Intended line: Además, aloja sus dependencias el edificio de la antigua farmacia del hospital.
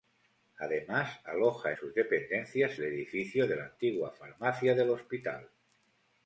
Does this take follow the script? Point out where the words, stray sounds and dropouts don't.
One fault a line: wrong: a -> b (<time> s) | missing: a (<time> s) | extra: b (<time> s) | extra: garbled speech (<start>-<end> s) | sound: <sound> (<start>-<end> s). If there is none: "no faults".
no faults